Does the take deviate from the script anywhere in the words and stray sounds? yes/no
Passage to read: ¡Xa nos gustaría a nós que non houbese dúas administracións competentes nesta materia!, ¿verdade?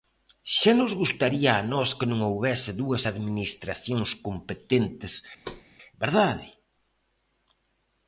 yes